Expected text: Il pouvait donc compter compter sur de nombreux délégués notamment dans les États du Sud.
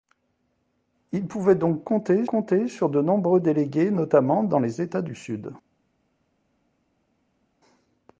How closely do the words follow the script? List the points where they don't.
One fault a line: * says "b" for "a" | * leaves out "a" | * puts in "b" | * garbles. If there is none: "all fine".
all fine